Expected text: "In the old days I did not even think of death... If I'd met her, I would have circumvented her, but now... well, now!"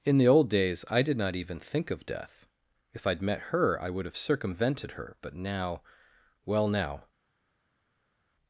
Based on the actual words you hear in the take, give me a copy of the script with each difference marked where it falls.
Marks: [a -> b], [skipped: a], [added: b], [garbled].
"In the old days I did not even think of death... If I'd met her, I would have circumvented her, but now... well, now!"